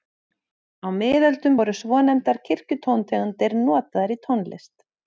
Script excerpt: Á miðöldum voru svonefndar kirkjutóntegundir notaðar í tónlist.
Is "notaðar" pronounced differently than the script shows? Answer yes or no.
no